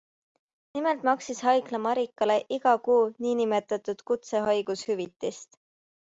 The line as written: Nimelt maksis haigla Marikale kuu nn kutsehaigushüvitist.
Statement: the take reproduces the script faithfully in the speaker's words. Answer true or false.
false